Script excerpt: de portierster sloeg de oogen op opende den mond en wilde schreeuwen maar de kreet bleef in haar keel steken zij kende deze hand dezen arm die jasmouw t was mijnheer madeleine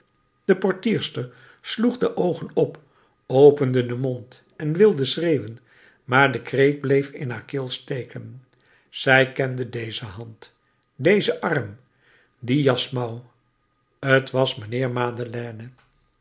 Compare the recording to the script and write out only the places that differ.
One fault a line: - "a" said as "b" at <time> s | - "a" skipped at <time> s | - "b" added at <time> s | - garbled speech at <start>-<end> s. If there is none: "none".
none